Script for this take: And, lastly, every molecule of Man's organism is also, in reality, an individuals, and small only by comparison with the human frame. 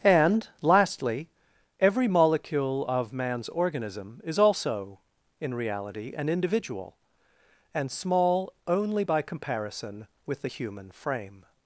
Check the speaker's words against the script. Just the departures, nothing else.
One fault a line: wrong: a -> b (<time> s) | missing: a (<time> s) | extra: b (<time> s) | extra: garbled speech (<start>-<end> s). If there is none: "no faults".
wrong: individuals -> individual (6.3 s)